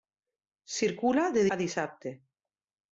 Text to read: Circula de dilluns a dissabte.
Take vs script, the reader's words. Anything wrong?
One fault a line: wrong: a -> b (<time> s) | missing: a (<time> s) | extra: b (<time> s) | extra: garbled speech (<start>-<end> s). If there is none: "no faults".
missing: dilluns (1.4 s)